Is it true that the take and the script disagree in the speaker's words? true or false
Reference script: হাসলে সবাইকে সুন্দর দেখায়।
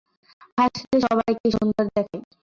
false